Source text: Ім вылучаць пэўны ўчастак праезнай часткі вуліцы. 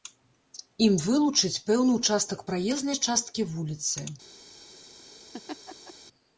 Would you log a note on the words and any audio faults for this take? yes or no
yes